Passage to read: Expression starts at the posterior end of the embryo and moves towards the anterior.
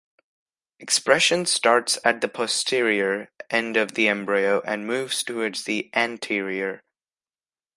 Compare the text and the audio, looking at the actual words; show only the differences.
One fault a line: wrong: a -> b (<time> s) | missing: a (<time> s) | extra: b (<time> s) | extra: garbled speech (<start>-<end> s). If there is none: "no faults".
no faults